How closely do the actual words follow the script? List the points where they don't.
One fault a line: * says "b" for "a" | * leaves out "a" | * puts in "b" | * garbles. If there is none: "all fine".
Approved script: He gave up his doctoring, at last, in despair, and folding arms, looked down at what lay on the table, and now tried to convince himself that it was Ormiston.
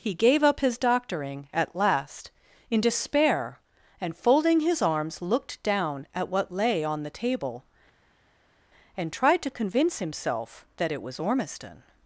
* puts in "his"
* leaves out "now"